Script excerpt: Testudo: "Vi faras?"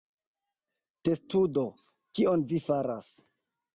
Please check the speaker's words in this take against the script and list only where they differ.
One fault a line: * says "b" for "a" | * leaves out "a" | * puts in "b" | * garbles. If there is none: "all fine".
* puts in "Kion"